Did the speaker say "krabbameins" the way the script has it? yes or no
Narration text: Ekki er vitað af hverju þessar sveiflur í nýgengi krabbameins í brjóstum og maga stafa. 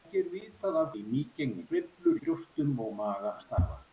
no